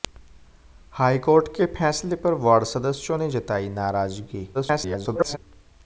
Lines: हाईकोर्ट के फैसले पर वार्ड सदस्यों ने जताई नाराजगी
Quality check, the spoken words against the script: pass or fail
fail